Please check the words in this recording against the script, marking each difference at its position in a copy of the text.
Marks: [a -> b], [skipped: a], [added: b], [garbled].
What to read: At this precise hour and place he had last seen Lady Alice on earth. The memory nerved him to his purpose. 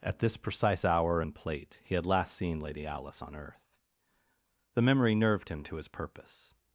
At this precise hour and [place -> plate] he had last seen Lady Alice on earth. The memory nerved him to his purpose.